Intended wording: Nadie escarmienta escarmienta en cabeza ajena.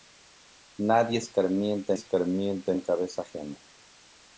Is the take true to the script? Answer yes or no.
yes